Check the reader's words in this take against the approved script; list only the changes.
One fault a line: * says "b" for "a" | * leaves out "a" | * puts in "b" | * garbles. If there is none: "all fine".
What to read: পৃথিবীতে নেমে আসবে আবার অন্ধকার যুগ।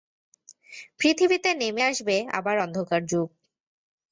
all fine